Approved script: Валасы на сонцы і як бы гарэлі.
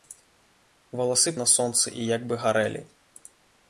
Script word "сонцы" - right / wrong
right